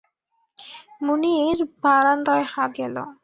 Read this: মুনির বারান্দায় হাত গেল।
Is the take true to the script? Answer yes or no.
yes